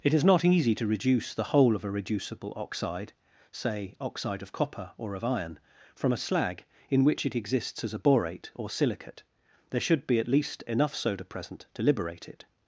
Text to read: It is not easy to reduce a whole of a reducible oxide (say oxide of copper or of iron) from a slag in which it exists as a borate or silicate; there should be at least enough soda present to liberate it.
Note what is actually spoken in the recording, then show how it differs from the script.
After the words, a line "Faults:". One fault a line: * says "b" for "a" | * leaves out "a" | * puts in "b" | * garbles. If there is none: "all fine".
It is not easy to reduce the whole of a reducible oxide (say oxide of copper or of iron) from a slag in which it exists as a borate or silicate; there should be at least enough soda present to liberate it.
Faults:
* says "the" for "a"